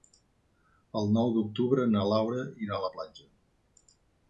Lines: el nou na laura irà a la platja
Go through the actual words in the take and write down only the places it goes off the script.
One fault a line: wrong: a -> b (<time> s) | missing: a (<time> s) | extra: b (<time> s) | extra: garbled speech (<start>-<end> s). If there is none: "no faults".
extra: d'octubre (1.4 s)